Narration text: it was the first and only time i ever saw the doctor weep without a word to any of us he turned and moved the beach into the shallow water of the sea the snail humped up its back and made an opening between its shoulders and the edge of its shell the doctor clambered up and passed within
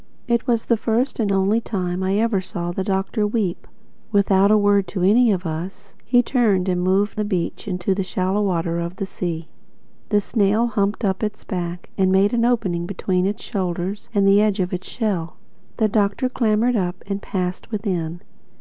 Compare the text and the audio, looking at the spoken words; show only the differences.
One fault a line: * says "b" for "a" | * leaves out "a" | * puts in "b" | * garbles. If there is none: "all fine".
all fine